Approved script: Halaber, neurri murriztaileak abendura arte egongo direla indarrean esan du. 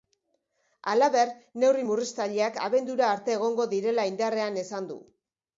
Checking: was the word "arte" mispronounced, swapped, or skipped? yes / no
no